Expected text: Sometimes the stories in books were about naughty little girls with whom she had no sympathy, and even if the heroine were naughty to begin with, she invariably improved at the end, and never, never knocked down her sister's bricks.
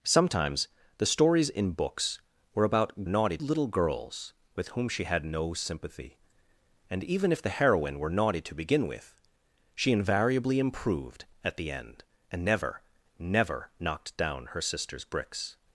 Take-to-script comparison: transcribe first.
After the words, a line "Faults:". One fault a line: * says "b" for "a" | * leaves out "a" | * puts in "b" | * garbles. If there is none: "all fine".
Sometimes the stories in books were about naughty little girls with whom she had no sympathy, and even if the heroine were naughty to begin with, she invariably improved at the end, and never, never knocked down her sister's bricks.
Faults:
all fine